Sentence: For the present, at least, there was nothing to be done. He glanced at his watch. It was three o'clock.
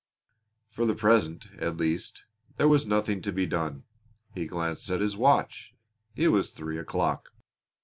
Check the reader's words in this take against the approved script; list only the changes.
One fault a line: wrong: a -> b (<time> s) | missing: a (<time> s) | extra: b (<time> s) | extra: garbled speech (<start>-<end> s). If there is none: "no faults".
no faults